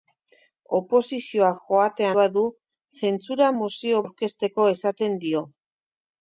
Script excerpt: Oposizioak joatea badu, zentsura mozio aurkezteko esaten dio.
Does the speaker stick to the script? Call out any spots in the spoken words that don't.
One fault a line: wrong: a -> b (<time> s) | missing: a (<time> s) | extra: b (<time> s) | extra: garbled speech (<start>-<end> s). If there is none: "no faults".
no faults